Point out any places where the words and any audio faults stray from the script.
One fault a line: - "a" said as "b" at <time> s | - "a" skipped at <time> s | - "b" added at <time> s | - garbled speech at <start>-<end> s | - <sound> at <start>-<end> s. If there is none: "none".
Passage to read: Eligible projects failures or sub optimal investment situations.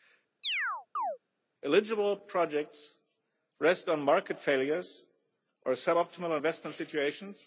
- chirp at 0.4-1.2 s
- "rest on market" added at 3.6 s